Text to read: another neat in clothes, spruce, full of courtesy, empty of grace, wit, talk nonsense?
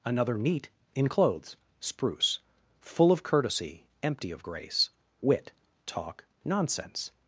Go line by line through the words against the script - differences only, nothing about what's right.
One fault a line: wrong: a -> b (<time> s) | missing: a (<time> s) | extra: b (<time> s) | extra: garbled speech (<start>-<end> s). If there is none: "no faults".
no faults